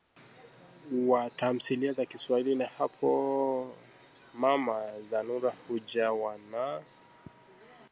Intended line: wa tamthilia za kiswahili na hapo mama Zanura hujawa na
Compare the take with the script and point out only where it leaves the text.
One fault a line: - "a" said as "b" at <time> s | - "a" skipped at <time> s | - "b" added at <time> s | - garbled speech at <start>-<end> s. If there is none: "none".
none